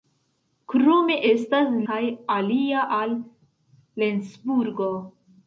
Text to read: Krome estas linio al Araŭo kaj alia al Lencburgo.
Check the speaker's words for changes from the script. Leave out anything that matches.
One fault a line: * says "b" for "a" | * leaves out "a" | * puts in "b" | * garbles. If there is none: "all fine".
* leaves out "linio al Araŭo"